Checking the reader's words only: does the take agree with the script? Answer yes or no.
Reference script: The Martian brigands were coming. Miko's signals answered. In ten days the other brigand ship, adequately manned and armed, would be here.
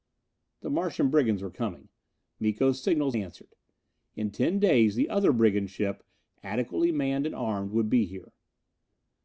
yes